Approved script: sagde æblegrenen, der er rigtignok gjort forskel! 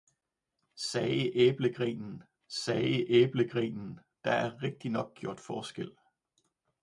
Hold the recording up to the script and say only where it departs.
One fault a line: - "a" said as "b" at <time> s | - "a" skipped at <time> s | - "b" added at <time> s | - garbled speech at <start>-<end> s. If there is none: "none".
- "sagde æblegrenen" added at 2.5 s